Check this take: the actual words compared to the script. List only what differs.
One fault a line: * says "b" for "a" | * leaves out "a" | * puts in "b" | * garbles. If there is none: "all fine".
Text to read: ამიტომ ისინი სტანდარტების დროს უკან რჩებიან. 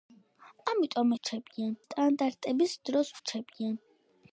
* says "რჩებიან" for "ისინი"
* leaves out "უკან"